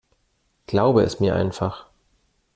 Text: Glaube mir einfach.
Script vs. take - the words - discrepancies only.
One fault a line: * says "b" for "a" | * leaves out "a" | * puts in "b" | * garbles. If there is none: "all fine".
* puts in "es"